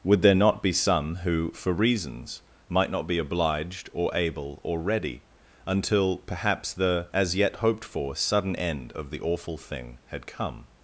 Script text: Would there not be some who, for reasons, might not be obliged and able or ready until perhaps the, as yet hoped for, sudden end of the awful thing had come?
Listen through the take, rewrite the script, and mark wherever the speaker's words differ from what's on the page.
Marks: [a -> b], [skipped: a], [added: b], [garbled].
Would there not be some who, for reasons, might not be obliged [and -> or] able or ready until perhaps the, as yet hoped for, sudden end of the awful thing had come?